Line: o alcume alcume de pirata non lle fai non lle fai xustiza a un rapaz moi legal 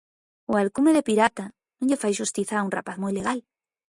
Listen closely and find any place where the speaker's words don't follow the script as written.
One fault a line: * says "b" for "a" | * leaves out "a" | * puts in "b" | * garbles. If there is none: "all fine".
* leaves out "alcume"
* leaves out "non lle fai"